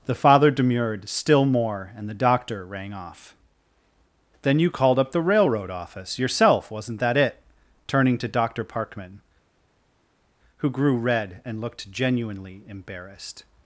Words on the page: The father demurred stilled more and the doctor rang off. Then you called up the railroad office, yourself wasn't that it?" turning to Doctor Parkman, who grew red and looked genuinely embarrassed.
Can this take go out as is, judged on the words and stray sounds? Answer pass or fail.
fail